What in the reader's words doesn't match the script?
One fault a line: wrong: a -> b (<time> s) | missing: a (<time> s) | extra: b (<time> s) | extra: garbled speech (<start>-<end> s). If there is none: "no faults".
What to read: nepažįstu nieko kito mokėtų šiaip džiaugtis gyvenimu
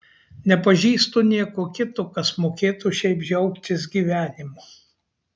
extra: kas (2.1 s)